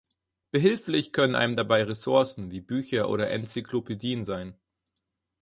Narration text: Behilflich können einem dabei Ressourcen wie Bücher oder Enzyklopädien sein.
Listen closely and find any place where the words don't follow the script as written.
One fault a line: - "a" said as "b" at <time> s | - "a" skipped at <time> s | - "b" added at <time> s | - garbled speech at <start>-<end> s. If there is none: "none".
none